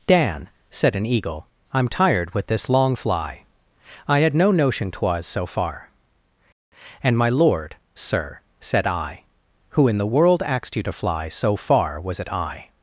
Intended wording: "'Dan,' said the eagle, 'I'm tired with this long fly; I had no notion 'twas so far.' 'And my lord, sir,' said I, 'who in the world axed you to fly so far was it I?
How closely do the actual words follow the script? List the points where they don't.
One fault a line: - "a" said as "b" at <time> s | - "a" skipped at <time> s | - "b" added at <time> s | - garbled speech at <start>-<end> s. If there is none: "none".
- "the" said as "an" at 0.9 s